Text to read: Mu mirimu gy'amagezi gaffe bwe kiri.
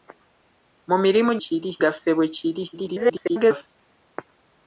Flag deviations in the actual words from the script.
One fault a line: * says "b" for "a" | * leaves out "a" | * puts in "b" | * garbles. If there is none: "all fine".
* says "kiri" for "gy'amagezi"
* garbles